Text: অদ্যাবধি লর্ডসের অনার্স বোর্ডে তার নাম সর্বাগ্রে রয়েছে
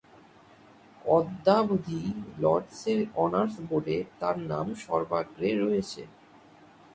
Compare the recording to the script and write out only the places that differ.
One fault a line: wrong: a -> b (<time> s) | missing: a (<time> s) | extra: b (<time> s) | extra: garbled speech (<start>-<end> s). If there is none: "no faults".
no faults